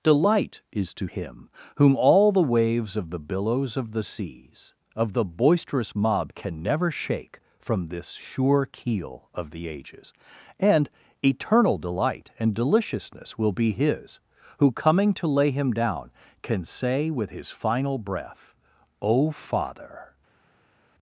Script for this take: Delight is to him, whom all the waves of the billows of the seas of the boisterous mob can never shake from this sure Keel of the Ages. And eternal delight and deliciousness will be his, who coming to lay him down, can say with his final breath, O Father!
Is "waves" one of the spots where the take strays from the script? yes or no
no